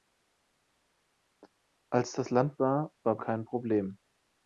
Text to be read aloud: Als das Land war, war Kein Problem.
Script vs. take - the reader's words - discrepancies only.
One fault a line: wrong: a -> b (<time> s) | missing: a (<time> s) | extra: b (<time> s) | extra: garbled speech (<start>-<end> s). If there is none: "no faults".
no faults